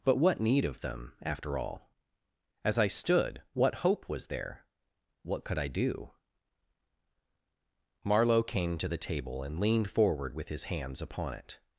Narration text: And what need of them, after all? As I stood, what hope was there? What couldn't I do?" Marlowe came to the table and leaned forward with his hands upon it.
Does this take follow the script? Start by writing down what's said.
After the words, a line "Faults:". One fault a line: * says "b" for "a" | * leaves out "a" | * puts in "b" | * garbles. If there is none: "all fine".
But what need of them, after all? As I stood, what hope was there? What could I do?" Marlowe came to the table and leaned forward with his hands upon it.
Faults:
* says "But" for "And"
* says "could" for "couldn't"